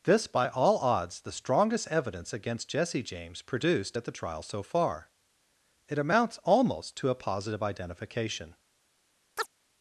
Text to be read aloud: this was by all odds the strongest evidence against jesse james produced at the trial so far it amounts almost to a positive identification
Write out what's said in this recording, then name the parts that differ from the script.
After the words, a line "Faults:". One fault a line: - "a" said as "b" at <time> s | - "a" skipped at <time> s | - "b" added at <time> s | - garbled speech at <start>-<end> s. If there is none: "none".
this by all odds the strongest evidence against jesse james produced at the trial so far it amounts almost to a positive identification
Faults:
- "was" skipped at 0.2 s